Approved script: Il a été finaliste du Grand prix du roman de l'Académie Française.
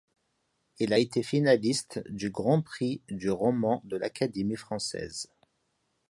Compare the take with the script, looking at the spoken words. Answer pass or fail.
pass